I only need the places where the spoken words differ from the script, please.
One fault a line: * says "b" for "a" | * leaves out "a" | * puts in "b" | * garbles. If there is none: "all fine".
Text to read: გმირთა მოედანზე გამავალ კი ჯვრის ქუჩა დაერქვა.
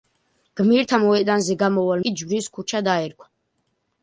all fine